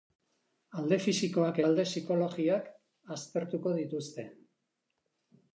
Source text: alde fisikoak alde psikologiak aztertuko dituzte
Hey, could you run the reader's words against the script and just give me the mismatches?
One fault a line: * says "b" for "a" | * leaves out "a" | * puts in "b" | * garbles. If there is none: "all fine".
all fine